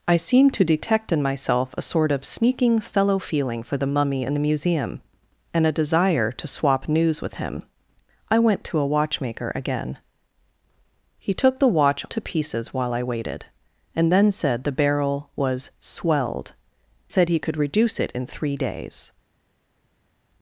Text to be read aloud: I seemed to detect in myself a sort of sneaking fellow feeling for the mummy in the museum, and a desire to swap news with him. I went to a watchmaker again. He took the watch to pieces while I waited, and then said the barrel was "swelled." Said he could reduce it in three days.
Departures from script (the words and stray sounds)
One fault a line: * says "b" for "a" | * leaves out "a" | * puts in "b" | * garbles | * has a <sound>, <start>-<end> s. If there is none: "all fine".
all fine